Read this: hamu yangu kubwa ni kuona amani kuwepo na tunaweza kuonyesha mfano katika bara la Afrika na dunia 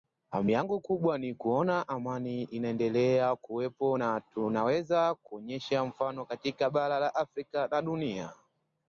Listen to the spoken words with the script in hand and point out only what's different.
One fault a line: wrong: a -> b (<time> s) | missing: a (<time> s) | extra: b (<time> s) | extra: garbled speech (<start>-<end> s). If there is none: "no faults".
extra: inaendelea (2.4 s)